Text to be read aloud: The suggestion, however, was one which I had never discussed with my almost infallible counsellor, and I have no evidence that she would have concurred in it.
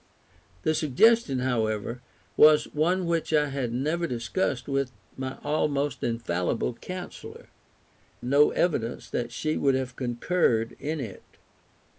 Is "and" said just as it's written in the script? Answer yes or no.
no